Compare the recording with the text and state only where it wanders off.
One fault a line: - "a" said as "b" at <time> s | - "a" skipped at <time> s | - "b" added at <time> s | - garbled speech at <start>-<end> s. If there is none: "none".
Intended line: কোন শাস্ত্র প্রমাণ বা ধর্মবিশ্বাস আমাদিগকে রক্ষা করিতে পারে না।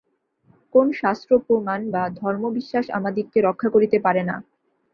none